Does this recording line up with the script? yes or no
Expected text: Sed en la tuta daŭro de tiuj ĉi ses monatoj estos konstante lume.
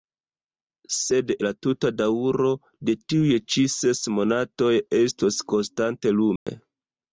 no